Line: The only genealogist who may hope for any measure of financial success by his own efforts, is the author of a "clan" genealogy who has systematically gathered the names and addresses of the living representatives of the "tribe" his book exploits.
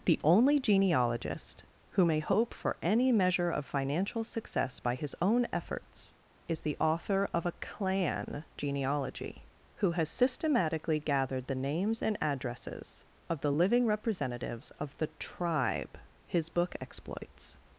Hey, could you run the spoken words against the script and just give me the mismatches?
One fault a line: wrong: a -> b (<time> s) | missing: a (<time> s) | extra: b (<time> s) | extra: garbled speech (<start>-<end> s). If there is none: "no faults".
no faults